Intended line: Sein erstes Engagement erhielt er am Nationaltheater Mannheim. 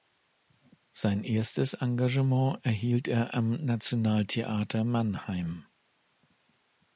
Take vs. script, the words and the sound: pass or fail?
pass